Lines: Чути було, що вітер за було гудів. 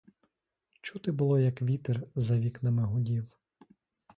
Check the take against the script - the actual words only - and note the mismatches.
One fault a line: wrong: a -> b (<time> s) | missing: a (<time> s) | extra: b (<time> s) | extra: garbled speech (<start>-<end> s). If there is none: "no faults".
wrong: що -> як (1.4 s)
wrong: було -> вікнами (2.4 s)